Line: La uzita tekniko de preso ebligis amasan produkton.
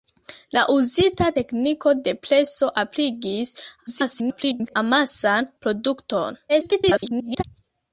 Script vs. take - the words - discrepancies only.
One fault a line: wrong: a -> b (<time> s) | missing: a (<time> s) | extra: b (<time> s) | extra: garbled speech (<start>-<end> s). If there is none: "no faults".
extra: garbled speech (3.9-4.8 s)
extra: garbled speech (6.5-7.4 s)